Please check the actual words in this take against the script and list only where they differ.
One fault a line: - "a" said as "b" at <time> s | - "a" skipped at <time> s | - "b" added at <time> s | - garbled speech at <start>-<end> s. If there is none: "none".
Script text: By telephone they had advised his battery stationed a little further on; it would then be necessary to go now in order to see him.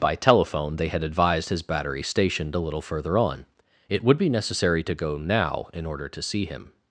- "then" skipped at 4.2 s